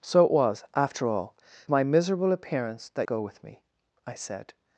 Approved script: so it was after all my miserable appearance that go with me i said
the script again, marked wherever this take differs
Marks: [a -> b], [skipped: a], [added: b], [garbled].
so it was after all my miserable appearance that go with me i said